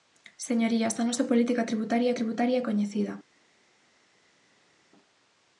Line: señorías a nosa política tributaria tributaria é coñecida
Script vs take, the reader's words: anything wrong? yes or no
no